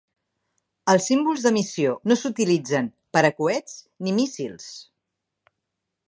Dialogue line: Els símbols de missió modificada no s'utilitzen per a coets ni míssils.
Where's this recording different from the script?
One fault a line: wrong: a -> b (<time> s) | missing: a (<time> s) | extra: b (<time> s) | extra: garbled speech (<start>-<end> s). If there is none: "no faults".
missing: modificada (1.9 s)